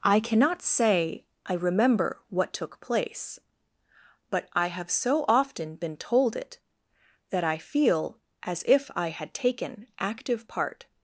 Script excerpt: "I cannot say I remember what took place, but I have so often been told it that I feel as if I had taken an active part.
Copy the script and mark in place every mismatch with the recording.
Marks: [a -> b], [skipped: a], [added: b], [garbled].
"I cannot say I remember what took place, but I have so often been told it that I feel as if I had taken [skipped: an] active part.